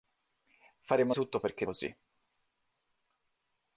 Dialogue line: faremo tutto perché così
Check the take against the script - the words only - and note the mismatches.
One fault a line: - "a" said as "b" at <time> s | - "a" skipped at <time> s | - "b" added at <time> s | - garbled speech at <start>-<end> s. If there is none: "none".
none